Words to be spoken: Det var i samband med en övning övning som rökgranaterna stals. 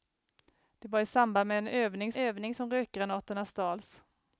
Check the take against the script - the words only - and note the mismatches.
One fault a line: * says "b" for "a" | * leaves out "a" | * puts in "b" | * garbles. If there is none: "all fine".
all fine